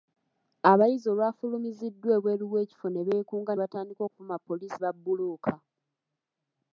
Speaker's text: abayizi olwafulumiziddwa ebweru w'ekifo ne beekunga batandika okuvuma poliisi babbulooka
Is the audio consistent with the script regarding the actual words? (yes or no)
yes